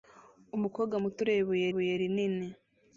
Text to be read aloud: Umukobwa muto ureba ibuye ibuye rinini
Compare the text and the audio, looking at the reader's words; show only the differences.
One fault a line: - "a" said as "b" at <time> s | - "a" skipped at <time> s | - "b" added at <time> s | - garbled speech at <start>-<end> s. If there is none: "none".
none